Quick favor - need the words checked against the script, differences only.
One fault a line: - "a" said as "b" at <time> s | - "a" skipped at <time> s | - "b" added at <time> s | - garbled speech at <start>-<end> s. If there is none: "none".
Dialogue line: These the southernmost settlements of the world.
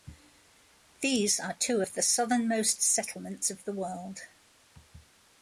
- "are two of" added at 1.4 s